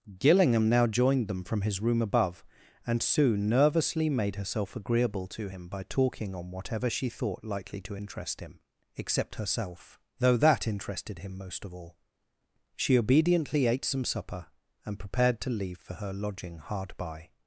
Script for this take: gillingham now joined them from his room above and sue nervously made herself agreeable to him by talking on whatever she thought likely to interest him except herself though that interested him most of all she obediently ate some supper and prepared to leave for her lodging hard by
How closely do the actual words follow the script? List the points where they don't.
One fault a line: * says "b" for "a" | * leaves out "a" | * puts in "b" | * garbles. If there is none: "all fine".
all fine